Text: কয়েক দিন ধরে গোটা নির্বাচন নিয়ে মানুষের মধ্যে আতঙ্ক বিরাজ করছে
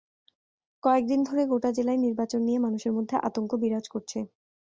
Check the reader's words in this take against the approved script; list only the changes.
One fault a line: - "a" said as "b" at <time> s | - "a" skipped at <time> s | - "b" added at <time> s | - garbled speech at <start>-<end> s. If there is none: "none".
- "জেলায়" added at 1.8 s